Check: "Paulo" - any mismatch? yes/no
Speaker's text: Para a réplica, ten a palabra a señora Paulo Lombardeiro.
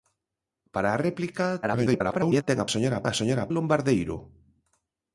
yes